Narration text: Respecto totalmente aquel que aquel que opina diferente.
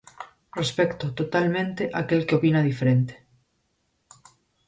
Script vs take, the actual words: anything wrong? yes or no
yes